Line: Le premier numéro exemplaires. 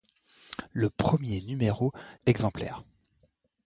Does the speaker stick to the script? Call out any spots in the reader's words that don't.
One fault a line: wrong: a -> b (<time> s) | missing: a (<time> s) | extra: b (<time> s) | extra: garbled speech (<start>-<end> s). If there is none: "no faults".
no faults